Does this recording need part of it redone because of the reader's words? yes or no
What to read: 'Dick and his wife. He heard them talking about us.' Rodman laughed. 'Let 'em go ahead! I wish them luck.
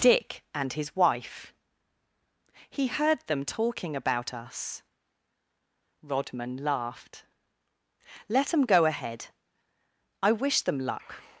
no